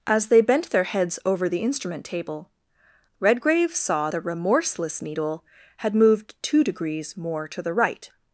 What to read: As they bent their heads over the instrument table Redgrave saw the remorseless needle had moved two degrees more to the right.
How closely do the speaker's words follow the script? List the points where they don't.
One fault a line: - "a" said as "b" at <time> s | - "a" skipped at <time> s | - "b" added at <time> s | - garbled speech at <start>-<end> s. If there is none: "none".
none